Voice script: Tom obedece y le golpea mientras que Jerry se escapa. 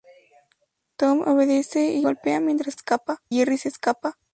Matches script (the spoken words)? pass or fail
fail